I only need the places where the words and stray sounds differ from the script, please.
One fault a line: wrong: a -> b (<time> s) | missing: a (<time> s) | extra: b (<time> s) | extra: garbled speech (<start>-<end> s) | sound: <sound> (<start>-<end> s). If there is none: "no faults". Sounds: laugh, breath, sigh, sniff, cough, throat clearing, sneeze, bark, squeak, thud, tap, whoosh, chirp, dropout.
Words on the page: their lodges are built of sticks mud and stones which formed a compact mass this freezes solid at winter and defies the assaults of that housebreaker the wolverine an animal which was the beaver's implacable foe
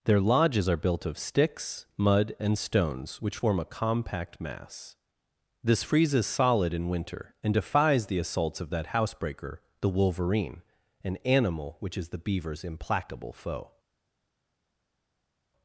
wrong: formed -> form (3.3 s)
wrong: at -> in (6.7 s)
wrong: was -> is (12.0 s)